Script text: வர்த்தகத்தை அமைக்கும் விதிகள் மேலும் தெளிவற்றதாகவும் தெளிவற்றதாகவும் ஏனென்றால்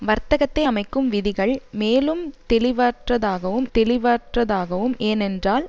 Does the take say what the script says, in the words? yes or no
yes